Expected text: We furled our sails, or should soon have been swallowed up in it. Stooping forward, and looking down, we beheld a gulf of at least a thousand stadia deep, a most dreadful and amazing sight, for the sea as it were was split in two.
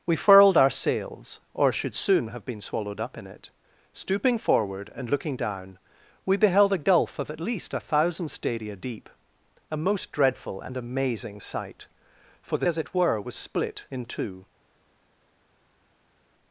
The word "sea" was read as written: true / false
false